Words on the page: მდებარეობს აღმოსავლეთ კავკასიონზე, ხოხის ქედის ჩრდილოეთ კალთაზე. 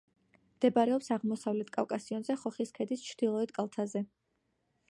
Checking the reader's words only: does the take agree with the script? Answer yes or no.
yes